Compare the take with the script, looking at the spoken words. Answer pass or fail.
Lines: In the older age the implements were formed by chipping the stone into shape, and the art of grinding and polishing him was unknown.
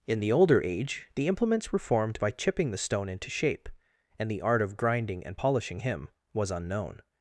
pass